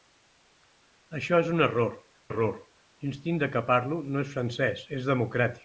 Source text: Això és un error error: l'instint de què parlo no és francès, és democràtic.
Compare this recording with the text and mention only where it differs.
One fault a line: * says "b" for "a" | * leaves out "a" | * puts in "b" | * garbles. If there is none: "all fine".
all fine